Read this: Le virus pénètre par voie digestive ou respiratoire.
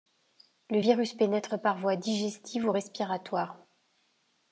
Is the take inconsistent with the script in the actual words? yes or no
no